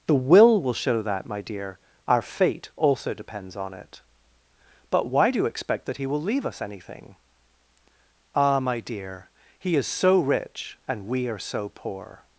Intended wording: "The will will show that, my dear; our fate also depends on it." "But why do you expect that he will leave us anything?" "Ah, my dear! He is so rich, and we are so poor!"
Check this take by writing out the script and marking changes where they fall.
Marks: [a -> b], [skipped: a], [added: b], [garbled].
"The will will show that, my dear; our fate also depends on it." "But why do you expect that he will leave us anything?" "Ah, my dear! He is so rich, and we are so poor!"